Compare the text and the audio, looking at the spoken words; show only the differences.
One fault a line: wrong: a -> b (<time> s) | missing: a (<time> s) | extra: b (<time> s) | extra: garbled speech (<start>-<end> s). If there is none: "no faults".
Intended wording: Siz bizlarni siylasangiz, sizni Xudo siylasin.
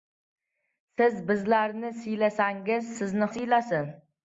missing: Xudo (3.3 s)